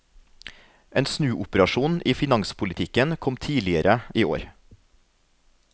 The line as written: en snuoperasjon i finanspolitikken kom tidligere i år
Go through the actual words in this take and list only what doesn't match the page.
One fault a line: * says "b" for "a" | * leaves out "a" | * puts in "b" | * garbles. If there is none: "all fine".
all fine